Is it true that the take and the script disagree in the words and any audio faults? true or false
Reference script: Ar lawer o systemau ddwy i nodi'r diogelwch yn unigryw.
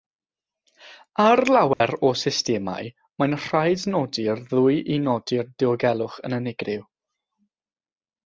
true